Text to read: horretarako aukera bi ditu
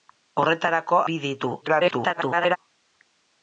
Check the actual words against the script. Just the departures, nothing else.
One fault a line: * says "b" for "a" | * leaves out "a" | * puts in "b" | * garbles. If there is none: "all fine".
* leaves out "aukera"
* garbles